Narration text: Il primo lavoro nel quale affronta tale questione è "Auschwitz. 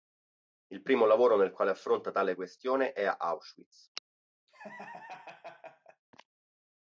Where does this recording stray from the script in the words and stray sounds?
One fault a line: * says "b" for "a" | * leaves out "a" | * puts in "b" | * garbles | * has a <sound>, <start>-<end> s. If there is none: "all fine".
* has a laugh, 4.5-6.0 s